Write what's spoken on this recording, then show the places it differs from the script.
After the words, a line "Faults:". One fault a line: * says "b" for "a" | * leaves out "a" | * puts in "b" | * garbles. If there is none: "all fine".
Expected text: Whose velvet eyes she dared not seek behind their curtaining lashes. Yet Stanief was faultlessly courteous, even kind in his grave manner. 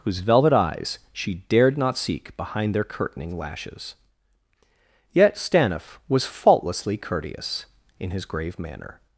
Whose velvet eyes she dared not seek behind their curtaining lashes. Yet Stanief was faultlessly courteous, in his grave manner.
Faults:
* leaves out "even kind"